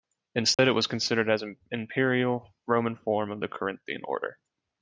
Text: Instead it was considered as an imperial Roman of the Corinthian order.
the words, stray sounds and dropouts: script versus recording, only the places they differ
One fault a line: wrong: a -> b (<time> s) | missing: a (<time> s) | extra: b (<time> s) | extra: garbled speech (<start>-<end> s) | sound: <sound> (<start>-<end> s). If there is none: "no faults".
sound: dropout (0.5-0.6 s)
extra: form (3.0 s)